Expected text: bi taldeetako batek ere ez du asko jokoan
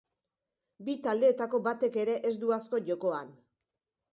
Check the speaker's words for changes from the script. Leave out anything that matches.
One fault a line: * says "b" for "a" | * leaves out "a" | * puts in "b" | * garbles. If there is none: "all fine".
all fine